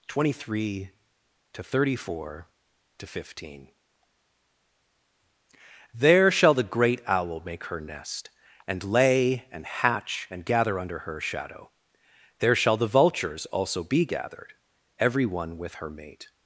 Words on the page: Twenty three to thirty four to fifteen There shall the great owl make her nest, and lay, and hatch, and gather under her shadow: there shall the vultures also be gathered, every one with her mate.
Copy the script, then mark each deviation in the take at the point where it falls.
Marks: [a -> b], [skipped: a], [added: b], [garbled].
Twenty three to thirty four to fifteen There shall the great owl make her nest, and lay, and hatch, and gather under her shadow: there shall the vultures also be gathered, every one with her mate.